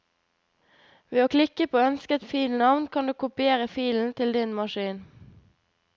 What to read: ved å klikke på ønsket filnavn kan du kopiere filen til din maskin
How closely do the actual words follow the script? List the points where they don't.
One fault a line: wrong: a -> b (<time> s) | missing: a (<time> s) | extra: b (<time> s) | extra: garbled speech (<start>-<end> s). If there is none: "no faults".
no faults